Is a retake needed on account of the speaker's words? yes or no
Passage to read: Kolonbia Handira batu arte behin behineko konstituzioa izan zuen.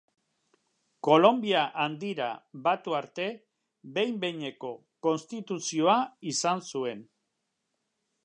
no